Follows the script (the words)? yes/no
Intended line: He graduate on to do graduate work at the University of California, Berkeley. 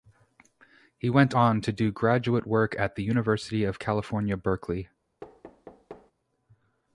no